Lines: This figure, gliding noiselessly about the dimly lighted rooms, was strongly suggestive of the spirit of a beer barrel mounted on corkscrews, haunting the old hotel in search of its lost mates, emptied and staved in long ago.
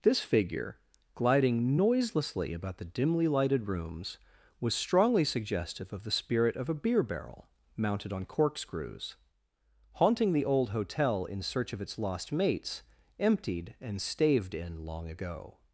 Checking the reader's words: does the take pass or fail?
pass